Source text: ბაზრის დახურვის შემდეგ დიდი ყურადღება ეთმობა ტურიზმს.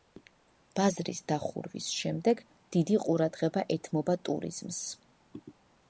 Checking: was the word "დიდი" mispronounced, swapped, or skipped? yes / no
no